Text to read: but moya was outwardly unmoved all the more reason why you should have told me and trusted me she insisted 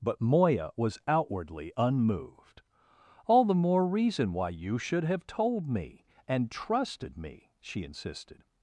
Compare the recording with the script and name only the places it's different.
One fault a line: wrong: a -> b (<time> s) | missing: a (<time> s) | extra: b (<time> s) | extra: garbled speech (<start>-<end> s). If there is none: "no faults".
no faults